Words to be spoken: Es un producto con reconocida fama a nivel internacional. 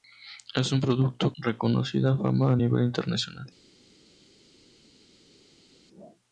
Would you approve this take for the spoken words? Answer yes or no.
no